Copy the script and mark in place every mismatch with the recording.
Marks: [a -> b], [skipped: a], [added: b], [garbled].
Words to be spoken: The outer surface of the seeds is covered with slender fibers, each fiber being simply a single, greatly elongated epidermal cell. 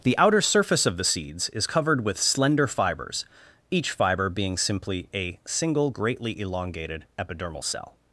The outer surface of the seeds is covered with slender fibers, each fiber being simply a single, greatly elongated epidermal cell.